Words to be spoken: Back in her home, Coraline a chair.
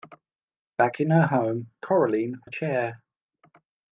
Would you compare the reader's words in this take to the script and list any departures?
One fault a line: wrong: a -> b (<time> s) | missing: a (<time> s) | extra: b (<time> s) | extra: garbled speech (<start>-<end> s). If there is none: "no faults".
no faults